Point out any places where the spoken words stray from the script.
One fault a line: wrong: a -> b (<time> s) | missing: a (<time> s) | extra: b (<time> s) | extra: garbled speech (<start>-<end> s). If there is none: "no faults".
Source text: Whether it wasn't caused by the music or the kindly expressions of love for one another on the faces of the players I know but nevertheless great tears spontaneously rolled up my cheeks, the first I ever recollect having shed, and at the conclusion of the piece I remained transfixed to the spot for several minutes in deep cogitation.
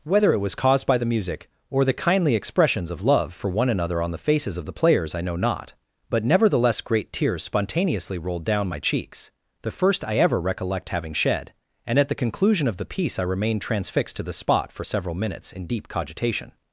wrong: wasn't -> was (0.4 s)
extra: not (5.3 s)
wrong: up -> down (8.4 s)